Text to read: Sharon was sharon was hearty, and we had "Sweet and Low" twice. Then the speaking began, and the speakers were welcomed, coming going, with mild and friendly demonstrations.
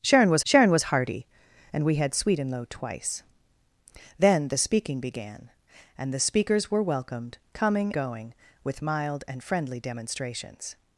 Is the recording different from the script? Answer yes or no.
no